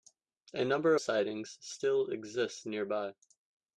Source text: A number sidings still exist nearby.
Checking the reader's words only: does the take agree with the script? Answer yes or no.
yes